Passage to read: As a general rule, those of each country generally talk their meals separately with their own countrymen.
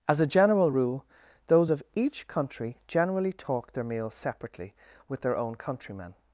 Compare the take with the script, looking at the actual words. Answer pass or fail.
pass